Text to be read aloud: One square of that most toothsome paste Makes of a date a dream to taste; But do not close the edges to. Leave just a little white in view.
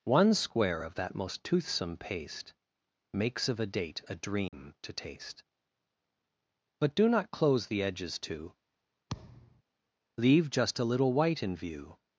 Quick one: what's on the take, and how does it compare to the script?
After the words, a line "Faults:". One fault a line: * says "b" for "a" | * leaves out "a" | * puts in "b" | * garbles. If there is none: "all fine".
One square of that most toothsome paste Makes of a date a dream to taste; But do not close the edges to. Leave just a little white in view.
Faults:
all fine